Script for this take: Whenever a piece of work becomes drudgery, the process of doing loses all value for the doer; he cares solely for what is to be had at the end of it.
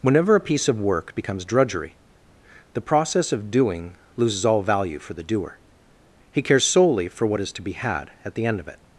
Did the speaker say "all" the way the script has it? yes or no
yes